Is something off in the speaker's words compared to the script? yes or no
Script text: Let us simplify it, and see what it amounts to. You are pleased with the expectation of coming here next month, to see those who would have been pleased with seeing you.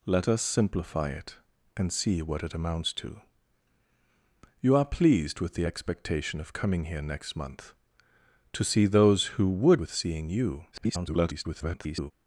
yes